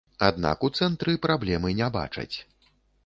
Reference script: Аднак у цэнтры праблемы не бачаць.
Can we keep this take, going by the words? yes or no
yes